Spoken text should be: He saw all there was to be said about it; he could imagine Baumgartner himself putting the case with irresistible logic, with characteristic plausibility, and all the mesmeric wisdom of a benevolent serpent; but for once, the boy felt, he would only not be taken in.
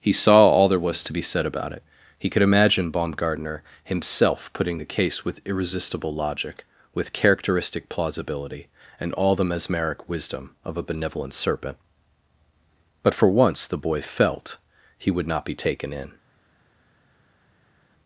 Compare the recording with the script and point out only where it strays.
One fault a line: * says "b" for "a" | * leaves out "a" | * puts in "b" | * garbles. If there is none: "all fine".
* leaves out "only"